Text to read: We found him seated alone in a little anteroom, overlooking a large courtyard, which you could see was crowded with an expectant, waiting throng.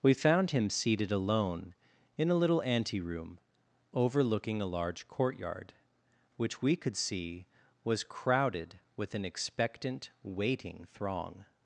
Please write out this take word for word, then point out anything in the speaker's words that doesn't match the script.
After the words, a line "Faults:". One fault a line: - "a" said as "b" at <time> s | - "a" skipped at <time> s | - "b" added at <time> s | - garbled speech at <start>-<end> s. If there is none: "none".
We found him seated alone in a little anteroom, overlooking a large courtyard, which we could see was crowded with an expectant, waiting throng.
Faults:
- "you" said as "we" at 6.6 s